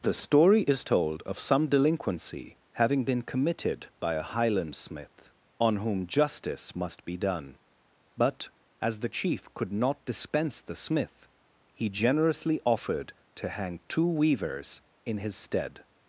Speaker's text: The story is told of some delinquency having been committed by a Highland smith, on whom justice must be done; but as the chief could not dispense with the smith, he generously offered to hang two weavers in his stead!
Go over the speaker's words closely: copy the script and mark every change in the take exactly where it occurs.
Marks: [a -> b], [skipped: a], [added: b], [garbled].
The story is told of some delinquency having been committed by a Highland smith, on whom justice must be done; but as the chief could not dispense [skipped: with] the smith, he generously offered to hang two weavers in his stead!